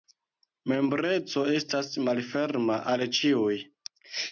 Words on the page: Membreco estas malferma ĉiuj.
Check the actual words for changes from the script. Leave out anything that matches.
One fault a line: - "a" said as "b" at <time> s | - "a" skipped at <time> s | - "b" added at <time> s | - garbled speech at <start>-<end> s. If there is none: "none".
- "al" added at 2.9 s